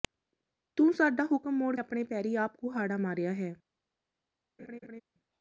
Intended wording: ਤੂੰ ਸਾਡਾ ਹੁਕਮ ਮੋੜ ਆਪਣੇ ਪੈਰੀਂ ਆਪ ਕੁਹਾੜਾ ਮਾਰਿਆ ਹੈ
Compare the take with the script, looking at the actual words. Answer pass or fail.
pass